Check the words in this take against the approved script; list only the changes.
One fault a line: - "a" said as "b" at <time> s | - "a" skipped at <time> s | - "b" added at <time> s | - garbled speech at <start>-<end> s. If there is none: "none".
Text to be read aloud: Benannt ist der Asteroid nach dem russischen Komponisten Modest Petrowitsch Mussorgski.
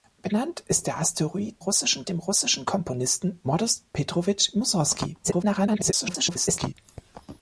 - "nach" said as "russischen" at 1.6 s
- garbled speech at 5.2-6.7 s